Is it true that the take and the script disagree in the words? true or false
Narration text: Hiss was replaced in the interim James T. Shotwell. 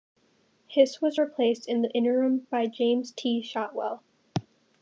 true